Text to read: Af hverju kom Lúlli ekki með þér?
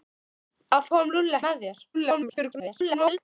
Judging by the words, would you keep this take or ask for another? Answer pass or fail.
fail